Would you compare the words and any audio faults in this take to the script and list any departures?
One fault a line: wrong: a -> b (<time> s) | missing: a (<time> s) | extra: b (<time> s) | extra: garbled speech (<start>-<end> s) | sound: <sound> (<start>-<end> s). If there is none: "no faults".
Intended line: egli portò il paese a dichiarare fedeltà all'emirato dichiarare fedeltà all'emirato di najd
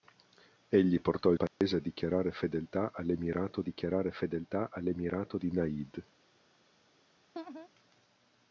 sound: dropout (1.5-1.6 s)
sound: laugh (7.3-7.7 s)